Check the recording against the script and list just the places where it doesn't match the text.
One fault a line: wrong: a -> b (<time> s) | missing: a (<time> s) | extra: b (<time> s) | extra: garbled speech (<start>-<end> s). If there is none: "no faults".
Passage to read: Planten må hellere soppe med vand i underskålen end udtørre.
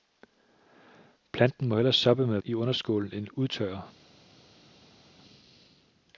missing: vand (2.4 s)